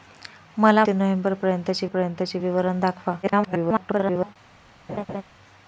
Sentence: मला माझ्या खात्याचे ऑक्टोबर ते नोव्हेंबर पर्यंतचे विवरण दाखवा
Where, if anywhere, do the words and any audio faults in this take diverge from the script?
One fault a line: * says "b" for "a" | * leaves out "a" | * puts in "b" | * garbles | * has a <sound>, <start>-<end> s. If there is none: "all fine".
* leaves out "माझ्या खात्याचे ऑक्टोबर"
* puts in "पर्यंतचे"
* garbles
* has a laugh, 4.9-5.2 s